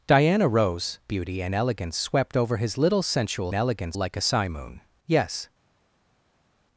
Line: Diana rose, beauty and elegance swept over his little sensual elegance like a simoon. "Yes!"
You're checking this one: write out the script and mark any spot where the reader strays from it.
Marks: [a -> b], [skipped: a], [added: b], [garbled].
Diana rose, beauty and elegance swept over his little sensual elegance like a simoon. "Yes!"